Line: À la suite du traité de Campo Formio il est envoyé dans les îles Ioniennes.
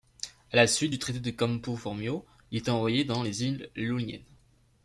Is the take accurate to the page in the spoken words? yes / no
yes